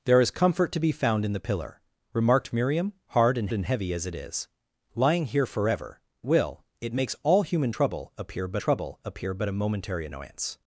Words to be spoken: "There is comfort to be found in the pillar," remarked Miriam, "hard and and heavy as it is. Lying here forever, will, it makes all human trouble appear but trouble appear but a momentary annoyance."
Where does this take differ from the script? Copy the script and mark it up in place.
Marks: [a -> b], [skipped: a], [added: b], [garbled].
"There is comfort to be found in the pillar," remarked Miriam, "hard and and heavy as it is. Lying here forever, will, it makes all human trouble appear but trouble appear but a momentary annoyance."